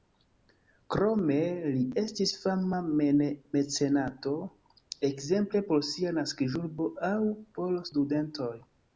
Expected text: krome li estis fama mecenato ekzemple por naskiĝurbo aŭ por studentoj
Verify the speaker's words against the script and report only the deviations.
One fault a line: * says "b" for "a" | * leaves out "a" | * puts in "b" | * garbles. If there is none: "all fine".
* puts in "sia"